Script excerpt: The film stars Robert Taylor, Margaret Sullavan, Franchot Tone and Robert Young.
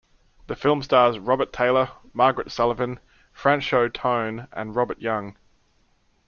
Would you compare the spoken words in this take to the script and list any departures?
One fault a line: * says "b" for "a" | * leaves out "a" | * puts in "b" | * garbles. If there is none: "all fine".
all fine